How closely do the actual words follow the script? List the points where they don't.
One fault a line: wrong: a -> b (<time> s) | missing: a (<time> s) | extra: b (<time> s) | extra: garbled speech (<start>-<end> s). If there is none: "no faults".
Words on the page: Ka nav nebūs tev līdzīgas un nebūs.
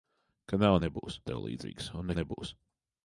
no faults